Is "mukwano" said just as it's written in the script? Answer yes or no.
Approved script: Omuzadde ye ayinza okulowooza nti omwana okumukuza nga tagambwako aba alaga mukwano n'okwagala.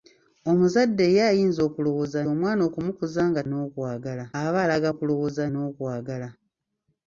no